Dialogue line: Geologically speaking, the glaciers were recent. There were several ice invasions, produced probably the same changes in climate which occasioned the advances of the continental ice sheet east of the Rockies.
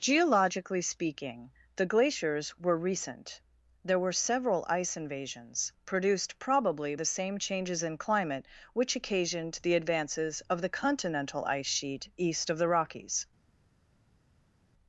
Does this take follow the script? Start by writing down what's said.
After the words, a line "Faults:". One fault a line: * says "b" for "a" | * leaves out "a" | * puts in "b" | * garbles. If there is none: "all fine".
Geologically speaking, the glaciers were recent. There were several ice invasions, produced probably the same changes in climate which occasioned the advances of the continental ice sheet east of the Rockies.
Faults:
all fine